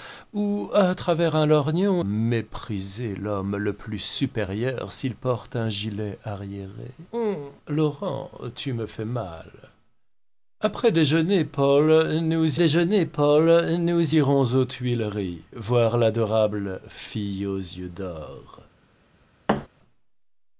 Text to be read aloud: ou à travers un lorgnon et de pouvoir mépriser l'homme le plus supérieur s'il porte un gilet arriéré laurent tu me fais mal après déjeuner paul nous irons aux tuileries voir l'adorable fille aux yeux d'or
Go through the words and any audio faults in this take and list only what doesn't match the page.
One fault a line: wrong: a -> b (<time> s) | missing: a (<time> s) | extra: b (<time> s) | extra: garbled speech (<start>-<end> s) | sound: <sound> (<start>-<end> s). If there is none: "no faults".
missing: et de pouvoir (2.0 s)
extra: déjeuner paul nous (12.5 s)
sound: thud (19.5-19.7 s)